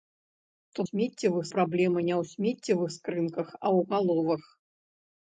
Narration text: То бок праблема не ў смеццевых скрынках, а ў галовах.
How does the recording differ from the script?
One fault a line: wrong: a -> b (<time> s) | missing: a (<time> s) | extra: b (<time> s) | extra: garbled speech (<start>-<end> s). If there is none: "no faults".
wrong: бок -> смеццевых (0.9 s)